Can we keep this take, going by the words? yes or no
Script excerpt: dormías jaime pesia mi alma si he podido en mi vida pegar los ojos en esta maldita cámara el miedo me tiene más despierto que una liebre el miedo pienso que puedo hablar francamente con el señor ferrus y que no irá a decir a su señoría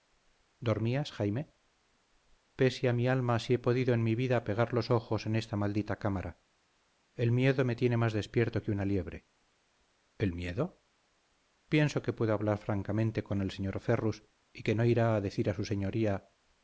yes